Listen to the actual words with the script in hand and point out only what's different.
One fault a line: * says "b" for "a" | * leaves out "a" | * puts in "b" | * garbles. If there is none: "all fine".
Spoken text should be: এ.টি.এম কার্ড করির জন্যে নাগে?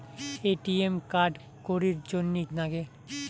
all fine